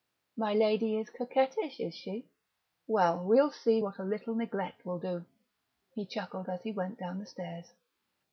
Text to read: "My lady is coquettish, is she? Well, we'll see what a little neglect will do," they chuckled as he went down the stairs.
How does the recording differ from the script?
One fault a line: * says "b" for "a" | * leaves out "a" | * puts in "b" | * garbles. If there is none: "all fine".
* says "he" for "they"